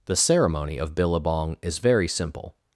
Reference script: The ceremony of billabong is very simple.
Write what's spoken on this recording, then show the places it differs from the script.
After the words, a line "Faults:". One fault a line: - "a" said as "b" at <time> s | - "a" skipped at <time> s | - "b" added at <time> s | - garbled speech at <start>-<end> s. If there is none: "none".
The ceremony of billabong is very simple.
Faults:
none